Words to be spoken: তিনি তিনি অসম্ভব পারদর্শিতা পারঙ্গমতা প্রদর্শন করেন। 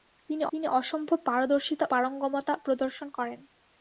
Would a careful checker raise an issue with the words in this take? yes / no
no